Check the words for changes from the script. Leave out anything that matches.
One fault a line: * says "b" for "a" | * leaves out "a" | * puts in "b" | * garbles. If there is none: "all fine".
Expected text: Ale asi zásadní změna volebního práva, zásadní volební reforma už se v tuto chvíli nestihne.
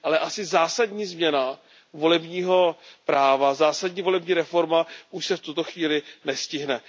all fine